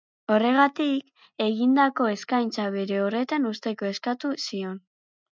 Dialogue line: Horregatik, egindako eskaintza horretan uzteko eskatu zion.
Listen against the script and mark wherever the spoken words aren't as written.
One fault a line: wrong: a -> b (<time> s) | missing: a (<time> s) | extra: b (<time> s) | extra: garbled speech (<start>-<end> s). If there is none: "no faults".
extra: bere (2.8 s)